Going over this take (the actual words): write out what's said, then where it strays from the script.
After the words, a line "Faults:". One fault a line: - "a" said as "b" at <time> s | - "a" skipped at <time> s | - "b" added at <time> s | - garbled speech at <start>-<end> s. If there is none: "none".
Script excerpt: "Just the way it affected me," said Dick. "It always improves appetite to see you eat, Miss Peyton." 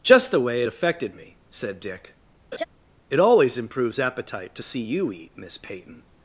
"Just the way it affected me," said Dick. "It always improves appetite to see you eat, Miss Peyton."
Faults:
none